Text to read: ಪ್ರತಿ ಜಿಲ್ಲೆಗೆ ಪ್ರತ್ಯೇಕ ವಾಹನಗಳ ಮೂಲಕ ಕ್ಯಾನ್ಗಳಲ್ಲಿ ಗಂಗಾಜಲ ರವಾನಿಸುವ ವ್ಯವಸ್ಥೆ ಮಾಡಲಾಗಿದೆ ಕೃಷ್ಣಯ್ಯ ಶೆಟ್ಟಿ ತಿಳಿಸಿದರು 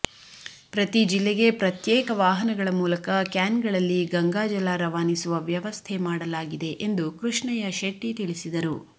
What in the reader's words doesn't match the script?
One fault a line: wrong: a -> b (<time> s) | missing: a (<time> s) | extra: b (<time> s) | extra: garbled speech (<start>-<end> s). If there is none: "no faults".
extra: ಎಂದು (6.9 s)